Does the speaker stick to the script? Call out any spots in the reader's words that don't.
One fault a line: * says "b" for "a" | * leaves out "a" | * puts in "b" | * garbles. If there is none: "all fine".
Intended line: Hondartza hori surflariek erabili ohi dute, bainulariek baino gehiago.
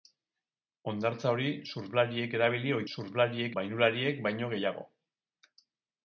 * says "surflariek" for "dute"